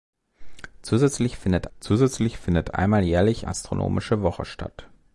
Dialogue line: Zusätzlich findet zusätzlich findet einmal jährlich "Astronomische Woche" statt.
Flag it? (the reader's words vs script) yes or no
no